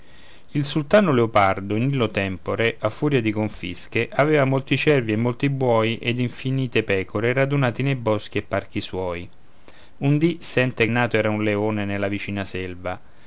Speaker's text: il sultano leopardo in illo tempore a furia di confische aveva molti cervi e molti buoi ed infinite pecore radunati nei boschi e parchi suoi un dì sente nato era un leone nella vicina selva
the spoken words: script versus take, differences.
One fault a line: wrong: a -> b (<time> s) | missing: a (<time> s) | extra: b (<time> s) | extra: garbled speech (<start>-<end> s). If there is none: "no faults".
no faults